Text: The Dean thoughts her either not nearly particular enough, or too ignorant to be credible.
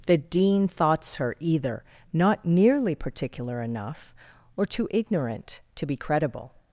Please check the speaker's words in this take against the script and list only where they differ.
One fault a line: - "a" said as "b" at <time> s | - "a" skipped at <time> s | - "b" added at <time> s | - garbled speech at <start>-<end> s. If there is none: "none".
none